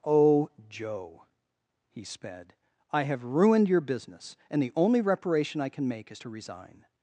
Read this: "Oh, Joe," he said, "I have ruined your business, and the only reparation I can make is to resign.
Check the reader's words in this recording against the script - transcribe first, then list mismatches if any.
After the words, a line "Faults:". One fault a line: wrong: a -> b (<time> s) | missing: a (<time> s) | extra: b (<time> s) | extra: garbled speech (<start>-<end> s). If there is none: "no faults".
"Oh, Joe," he sped, "I have ruined your business, and the only reparation I can make is to resign.
Faults:
wrong: said -> sped (2.0 s)